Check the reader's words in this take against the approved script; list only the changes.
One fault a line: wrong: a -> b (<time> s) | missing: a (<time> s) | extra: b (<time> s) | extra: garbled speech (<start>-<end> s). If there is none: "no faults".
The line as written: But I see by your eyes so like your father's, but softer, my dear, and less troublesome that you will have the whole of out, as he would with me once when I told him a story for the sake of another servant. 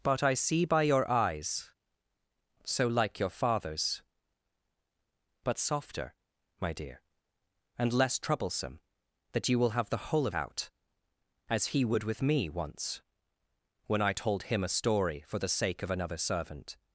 no faults